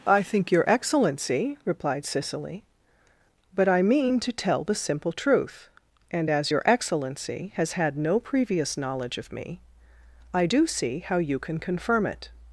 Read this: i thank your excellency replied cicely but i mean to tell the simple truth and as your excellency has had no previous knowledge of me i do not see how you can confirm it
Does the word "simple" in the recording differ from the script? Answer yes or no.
no